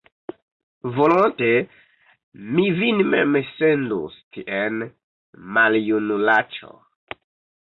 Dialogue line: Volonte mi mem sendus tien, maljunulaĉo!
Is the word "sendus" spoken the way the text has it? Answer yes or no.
yes